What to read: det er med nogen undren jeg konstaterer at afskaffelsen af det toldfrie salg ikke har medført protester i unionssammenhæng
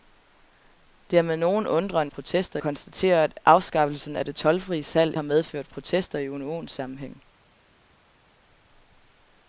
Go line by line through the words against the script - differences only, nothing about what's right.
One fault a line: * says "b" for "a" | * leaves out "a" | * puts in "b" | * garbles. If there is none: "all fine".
* says "protester" for "jeg"
* leaves out "ikke"